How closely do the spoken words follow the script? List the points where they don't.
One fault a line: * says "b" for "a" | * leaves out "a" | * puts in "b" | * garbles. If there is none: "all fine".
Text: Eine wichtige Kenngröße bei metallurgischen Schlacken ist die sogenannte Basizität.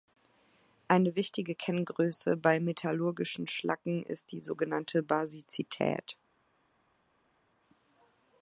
all fine